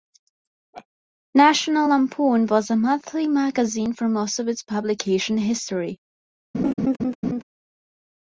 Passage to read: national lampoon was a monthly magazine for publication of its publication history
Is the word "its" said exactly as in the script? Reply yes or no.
yes